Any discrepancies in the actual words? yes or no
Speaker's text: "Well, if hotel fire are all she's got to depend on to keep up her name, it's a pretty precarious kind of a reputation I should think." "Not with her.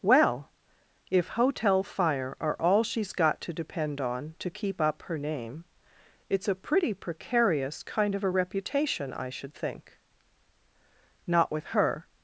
no